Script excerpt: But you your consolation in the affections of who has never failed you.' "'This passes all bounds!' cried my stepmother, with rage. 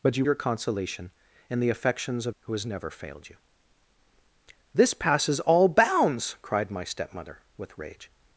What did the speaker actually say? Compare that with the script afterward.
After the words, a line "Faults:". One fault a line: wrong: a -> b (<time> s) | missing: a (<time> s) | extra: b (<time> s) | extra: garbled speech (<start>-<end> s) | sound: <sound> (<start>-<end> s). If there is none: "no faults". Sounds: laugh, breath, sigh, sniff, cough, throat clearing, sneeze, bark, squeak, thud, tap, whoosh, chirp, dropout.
But you your consolation in the affections of who has never failed you.' "'This passes all bounds!' cried my stepmother, with rage.
Faults:
no faults